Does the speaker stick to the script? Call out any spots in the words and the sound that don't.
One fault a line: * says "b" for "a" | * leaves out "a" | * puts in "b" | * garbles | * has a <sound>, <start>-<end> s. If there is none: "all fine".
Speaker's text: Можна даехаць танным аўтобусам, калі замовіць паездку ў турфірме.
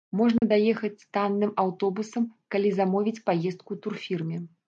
* has a dropout, 0.4-0.4 s